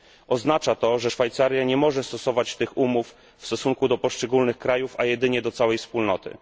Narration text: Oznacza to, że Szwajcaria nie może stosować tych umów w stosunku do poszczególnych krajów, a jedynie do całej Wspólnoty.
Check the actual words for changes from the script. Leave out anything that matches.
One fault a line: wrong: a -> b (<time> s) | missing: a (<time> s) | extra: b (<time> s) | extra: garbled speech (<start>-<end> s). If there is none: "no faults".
no faults